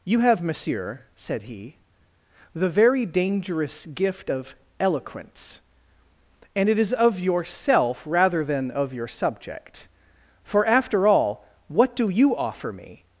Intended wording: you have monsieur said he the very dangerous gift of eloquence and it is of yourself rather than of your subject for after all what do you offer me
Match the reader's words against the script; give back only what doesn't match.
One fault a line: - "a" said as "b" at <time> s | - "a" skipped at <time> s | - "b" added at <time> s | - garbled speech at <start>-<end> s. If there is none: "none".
none